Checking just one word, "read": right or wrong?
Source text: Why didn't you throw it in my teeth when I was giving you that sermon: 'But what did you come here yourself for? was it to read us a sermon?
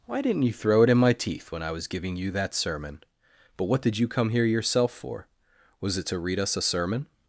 right